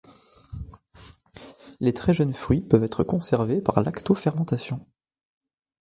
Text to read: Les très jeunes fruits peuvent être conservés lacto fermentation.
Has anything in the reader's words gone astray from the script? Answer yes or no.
yes